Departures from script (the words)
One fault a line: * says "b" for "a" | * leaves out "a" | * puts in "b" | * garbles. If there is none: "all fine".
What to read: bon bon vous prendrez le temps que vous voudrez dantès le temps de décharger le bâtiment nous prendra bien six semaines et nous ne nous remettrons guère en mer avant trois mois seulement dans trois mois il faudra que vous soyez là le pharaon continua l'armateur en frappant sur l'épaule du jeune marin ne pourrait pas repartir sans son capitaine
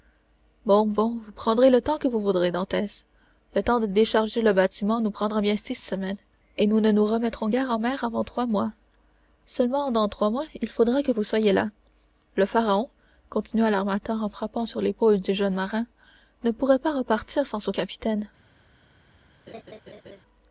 all fine